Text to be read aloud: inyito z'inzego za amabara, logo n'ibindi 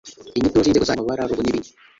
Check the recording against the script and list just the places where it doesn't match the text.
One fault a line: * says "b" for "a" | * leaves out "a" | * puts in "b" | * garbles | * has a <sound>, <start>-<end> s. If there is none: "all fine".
all fine